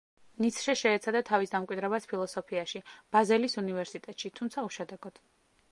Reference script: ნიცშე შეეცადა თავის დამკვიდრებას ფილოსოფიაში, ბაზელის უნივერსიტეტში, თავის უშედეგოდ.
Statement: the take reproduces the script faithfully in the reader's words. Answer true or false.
false